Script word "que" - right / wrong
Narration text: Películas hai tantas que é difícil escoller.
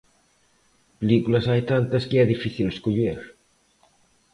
right